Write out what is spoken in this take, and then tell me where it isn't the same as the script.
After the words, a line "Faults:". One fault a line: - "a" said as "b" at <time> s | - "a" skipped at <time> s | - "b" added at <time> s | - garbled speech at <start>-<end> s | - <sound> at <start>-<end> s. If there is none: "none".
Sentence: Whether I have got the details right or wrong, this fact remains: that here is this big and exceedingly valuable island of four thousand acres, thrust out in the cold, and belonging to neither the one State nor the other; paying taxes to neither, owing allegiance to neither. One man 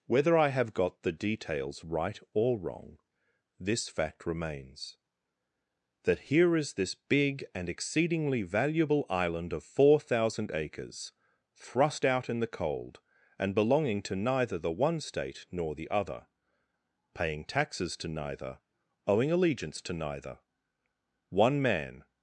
Whether I have got the details right or wrong, this fact remains: that here is this big and exceedingly valuable island of four thousand acres, thrust out in the cold, and belonging to neither the one State nor the other; paying taxes to neither, owing allegiance to neither. One man
Faults:
none